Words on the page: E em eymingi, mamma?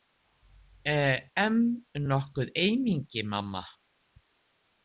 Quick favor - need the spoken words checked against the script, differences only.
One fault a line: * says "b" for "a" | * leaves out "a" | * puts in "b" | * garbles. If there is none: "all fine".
* puts in "nokkuð"